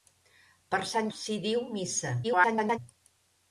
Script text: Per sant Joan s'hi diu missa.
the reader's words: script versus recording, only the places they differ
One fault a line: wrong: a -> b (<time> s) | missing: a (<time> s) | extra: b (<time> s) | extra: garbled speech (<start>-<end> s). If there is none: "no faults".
missing: Joan (1.1 s)
extra: garbled speech (2.2-2.8 s)